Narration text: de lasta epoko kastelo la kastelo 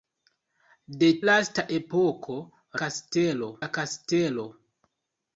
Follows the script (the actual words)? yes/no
yes